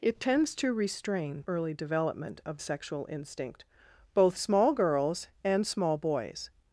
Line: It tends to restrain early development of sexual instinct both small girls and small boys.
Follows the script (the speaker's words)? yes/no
yes